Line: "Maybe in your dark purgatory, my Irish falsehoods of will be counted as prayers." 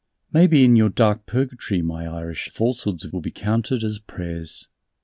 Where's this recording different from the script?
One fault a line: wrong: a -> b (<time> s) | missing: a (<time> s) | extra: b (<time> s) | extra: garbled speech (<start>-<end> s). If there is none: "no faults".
no faults